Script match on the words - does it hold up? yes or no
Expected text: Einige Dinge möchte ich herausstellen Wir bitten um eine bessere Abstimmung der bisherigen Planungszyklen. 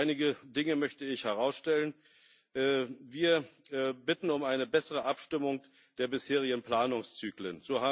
yes